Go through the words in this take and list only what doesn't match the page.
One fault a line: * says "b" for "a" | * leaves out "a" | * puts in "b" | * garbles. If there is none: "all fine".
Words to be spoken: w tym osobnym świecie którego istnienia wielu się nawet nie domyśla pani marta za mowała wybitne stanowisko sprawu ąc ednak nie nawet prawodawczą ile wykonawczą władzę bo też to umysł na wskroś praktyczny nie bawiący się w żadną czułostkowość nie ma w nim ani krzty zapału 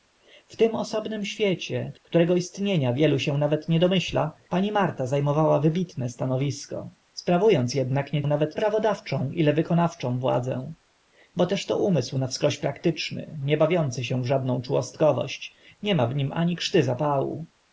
all fine